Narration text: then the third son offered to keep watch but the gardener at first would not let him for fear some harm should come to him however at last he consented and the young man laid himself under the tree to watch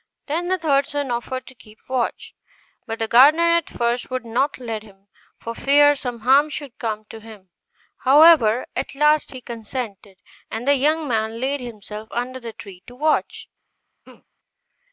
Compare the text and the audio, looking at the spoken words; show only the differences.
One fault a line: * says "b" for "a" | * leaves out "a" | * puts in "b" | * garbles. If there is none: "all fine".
all fine